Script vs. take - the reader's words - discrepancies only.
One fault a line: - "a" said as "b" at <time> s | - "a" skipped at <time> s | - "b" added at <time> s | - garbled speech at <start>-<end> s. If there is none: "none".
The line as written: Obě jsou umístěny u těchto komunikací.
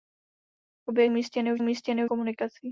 - "jsou" skipped at 1.1 s
- "těchto" said as "umístěny" at 1.6 s